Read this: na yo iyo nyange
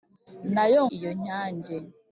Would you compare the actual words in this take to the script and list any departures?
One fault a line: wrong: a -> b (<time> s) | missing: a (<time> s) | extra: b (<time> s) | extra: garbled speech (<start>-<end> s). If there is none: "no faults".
no faults